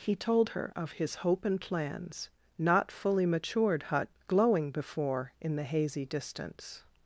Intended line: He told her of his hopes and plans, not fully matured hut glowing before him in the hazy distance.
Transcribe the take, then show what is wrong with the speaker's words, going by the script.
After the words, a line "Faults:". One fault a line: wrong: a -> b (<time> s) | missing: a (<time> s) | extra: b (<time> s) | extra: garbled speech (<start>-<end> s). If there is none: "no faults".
He told her of his hope and plans, not fully matured hut glowing before in the hazy distance.
Faults:
wrong: hopes -> hope (1.1 s)
missing: him (5.3 s)